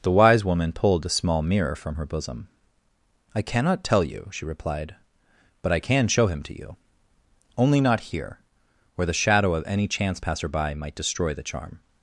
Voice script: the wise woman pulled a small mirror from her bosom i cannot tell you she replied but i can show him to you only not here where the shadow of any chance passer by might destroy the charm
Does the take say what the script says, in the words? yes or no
yes